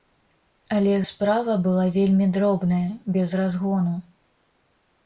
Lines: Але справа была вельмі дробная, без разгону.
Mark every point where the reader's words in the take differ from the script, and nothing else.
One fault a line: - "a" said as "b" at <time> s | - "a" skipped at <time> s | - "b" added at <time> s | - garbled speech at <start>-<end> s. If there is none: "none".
none